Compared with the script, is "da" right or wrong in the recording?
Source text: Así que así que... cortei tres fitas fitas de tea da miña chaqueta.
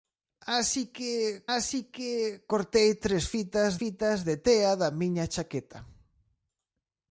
right